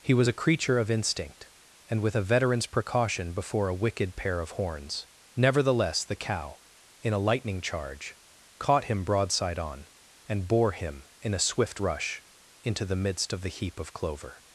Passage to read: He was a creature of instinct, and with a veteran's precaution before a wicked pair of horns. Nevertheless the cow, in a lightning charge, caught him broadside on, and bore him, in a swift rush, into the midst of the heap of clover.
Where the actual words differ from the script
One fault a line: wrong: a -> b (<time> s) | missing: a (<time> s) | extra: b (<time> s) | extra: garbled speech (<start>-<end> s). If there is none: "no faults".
no faults